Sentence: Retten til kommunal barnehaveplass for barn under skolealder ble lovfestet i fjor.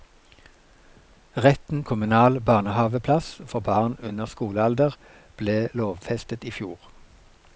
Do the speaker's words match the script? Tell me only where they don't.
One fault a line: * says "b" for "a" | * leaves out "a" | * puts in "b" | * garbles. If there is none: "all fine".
* leaves out "til"